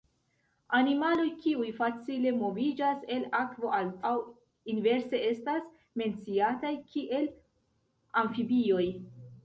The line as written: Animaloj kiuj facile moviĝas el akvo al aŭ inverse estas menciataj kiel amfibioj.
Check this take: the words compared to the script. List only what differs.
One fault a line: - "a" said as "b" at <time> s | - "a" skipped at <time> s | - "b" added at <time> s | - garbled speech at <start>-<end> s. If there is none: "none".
none